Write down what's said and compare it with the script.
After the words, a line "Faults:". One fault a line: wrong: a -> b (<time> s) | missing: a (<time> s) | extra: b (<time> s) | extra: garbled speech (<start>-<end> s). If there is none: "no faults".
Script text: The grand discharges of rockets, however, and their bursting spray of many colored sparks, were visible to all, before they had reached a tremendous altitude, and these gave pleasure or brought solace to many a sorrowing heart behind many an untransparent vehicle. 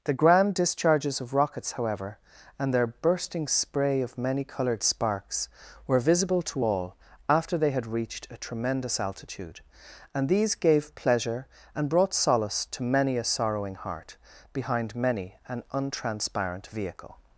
The grand discharges of rockets, however, and their bursting spray of many colored sparks, were visible to all, after they had reached a tremendous altitude, and these gave pleasure and brought solace to many a sorrowing heart behind many an untransparent vehicle.
Faults:
wrong: before -> after (7.3 s)
wrong: or -> and (11.7 s)